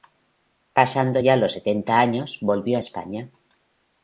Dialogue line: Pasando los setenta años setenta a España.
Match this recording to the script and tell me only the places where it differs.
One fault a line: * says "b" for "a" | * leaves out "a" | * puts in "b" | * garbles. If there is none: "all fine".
* puts in "ya"
* says "volvió" for "setenta"